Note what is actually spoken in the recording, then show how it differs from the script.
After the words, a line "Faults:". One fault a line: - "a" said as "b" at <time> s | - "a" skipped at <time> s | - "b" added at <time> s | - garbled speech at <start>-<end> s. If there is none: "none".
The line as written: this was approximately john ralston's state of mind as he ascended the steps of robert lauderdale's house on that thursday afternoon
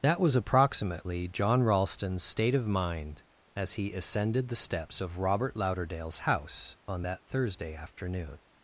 that was approximately john ralston's state of mind as he ascended the steps of robert lauderdale's house on that thursday afternoon
Faults:
- "this" said as "that" at 0.0 s